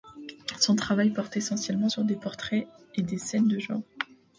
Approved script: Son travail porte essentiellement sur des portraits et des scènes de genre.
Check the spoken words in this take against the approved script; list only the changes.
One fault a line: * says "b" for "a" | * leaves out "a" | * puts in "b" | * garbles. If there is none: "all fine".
all fine